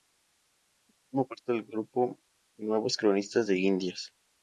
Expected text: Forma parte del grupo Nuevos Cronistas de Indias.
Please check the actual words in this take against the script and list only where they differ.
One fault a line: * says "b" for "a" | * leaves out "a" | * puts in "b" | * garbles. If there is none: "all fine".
all fine